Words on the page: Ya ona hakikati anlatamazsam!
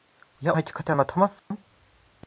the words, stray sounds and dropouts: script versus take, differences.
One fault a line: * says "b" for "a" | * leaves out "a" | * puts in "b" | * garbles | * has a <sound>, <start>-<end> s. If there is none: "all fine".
* leaves out "ona"
* has a dropout, 1.4-1.5 s